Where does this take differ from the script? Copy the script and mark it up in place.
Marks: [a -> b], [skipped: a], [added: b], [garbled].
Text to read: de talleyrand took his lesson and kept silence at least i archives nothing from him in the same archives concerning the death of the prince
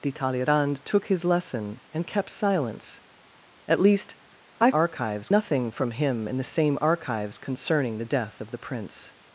de talleyrand took his lesson and kept silence at least i archives nothing from him in the same archives concerning the death of the prince